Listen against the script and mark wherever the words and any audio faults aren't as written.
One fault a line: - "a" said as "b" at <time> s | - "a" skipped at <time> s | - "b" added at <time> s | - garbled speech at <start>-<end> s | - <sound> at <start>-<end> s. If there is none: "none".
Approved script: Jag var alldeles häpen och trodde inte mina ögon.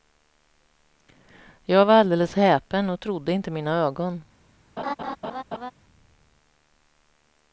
- laugh at 4.8-5.7 s